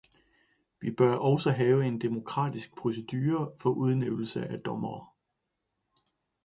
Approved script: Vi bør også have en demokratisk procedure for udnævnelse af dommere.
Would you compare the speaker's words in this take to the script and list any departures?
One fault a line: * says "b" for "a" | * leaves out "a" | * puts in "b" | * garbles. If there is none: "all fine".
all fine